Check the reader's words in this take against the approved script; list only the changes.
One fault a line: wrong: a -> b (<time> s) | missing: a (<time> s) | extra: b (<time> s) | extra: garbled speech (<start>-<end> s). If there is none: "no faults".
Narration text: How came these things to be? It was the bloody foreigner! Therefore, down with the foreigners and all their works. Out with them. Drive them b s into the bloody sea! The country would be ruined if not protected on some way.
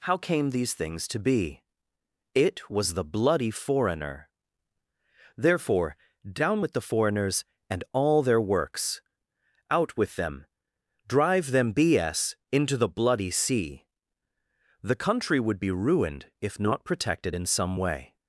wrong: on -> in (17.3 s)